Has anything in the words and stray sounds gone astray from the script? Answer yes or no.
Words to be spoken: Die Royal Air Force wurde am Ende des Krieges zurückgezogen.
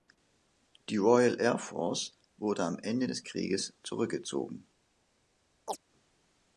yes